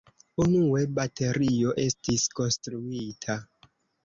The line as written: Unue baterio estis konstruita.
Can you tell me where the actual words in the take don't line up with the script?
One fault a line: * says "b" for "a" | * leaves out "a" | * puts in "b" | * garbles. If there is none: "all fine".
all fine